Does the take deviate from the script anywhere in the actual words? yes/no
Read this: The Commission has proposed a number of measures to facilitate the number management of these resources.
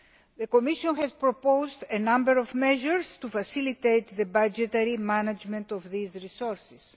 yes